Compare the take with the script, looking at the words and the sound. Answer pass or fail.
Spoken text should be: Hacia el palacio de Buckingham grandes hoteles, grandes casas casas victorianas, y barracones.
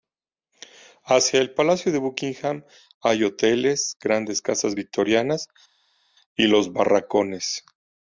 fail